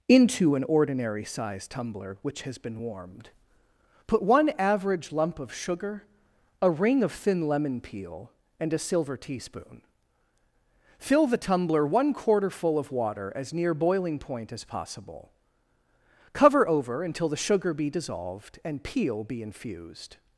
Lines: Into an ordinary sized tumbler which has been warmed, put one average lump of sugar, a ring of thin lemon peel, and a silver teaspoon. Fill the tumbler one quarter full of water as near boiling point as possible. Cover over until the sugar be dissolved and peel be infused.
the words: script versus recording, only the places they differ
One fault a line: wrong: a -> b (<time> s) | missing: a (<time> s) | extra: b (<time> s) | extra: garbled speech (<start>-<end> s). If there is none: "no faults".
no faults